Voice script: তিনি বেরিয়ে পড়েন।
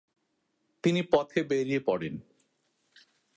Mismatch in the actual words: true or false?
true